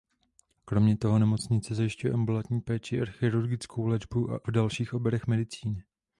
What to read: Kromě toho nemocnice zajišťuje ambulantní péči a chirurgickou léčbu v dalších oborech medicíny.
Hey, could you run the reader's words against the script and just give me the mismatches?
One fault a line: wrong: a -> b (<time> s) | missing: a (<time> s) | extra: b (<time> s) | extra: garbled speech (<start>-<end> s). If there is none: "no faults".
no faults